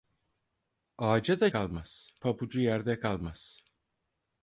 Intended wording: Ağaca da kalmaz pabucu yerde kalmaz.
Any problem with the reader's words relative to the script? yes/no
no